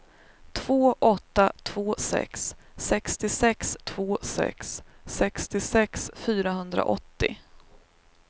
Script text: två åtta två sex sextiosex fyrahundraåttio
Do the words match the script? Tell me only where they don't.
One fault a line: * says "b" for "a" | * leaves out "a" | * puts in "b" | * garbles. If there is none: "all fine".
* puts in "två sex sextiosex"